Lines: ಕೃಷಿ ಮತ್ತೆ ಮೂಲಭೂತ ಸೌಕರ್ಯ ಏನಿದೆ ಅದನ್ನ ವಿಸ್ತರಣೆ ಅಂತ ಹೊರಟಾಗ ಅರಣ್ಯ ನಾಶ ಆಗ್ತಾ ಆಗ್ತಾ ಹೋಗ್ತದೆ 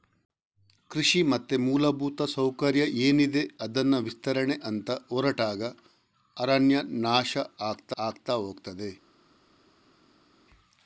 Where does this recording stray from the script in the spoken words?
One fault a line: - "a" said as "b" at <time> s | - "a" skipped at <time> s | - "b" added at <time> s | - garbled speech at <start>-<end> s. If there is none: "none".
none